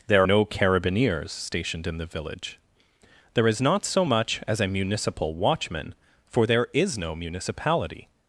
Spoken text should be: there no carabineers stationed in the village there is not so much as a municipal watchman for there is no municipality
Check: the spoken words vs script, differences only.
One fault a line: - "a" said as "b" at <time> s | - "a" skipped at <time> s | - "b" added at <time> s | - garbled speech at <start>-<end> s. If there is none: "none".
none